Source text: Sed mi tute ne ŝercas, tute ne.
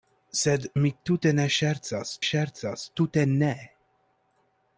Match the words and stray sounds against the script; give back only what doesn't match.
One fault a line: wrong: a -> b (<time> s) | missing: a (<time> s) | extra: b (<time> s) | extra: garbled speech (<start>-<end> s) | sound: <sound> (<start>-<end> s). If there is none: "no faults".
extra: ŝercas (2.3 s)